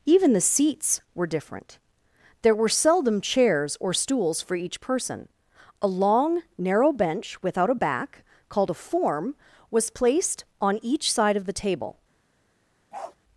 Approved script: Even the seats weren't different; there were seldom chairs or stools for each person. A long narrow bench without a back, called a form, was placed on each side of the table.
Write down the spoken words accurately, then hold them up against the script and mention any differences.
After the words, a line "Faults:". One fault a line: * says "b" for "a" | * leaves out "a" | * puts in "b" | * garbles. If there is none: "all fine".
Even the seats were different; there were seldom chairs or stools for each person. A long narrow bench without a back, called a form, was placed on each side of the table.
Faults:
* says "were" for "weren't"